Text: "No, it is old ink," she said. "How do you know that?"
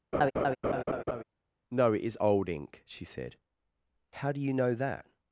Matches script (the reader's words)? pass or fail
pass